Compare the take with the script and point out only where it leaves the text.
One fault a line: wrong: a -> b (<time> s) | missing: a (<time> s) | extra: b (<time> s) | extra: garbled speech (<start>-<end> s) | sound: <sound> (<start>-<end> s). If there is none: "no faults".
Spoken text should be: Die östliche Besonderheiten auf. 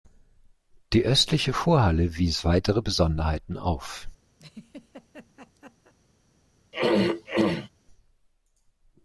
extra: Vorhalle wies weitere (1.5 s)
sound: laugh (4.4-5.9 s)
sound: throat clearing (6.7-7.7 s)